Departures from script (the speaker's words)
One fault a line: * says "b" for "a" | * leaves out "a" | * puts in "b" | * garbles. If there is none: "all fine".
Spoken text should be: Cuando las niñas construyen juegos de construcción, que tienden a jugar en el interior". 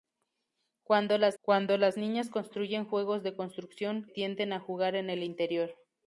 * puts in "cuando las"
* leaves out "que"